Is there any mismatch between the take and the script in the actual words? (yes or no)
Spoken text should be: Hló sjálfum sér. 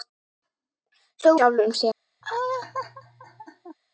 no